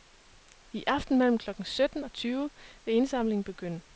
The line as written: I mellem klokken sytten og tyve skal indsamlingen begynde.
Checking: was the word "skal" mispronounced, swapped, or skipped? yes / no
yes